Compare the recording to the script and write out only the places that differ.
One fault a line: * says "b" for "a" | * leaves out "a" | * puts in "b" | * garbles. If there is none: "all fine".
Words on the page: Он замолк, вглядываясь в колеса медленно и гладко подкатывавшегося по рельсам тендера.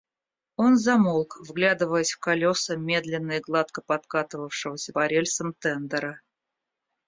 all fine